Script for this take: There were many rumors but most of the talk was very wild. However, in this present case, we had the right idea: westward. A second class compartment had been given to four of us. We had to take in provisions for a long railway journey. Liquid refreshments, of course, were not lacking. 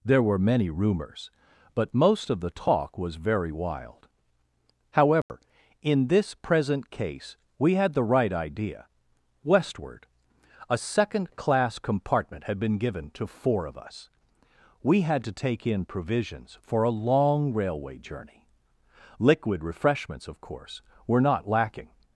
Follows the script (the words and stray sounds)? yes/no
no